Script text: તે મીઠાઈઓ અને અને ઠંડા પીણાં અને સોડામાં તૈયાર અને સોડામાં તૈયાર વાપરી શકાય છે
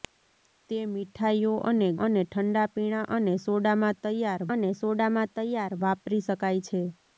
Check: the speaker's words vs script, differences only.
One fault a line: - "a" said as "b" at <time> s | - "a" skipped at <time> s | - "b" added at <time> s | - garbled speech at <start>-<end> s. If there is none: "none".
none